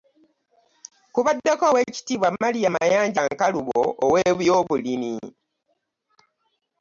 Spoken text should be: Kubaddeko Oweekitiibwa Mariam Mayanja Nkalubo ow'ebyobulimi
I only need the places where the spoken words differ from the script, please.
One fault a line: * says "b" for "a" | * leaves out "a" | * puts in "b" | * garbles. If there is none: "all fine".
all fine